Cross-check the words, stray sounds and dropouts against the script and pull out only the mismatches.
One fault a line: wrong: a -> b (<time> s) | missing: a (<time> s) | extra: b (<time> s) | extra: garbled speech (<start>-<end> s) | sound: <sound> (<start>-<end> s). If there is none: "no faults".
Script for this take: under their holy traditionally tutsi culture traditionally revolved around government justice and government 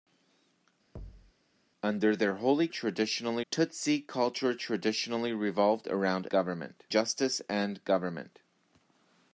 sound: thud (1.0-1.3 s)